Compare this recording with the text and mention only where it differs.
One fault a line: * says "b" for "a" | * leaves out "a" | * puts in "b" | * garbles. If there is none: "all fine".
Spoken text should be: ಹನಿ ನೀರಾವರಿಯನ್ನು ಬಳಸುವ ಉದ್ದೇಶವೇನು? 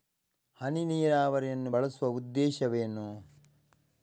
all fine